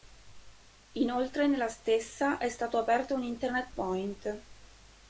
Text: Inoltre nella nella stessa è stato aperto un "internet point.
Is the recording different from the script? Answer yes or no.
yes